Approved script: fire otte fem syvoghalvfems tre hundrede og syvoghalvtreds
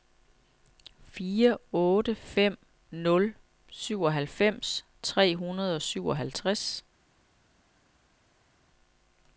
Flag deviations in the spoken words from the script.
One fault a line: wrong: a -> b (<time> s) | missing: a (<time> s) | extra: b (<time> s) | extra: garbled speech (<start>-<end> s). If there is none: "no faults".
extra: nul (2.9 s)